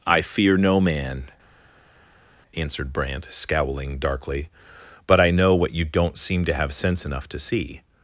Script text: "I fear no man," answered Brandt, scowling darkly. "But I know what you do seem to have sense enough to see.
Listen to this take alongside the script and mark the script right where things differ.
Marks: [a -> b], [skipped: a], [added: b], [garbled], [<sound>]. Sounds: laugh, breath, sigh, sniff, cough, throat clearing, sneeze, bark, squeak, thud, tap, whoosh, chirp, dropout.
"I fear no man," answered Brandt, scowling darkly. "But I know what you [do -> don't] seem to have sense enough to see.